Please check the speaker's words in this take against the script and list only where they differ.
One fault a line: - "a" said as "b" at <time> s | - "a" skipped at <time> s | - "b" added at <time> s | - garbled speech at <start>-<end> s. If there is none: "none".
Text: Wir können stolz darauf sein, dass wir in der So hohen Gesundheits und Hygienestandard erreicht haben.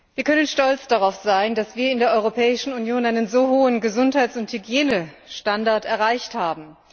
- "Europäischen Union einen" added at 2.1 s